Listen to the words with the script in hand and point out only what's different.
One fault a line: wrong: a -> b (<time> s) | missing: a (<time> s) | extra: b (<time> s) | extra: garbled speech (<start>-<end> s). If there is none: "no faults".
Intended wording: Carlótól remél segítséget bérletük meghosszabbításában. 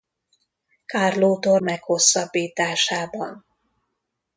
missing: remél segítséget bérletük (1.6 s)